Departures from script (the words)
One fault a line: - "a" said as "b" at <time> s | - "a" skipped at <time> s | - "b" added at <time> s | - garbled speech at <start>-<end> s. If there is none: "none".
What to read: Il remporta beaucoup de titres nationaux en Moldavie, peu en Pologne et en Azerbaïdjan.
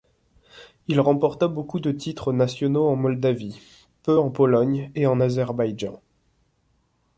none